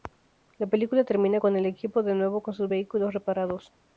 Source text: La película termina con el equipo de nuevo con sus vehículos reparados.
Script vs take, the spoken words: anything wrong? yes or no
no